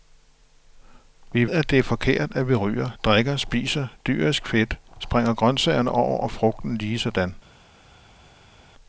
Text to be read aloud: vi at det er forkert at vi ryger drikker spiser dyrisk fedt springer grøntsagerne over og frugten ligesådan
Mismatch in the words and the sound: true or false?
false